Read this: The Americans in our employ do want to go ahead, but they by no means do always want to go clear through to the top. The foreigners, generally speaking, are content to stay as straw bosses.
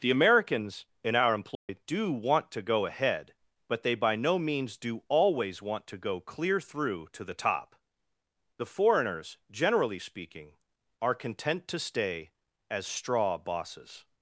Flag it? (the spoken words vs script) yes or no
no